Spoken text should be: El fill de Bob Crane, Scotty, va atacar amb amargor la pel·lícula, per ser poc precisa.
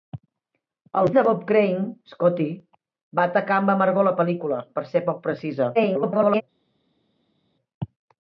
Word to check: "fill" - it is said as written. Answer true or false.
false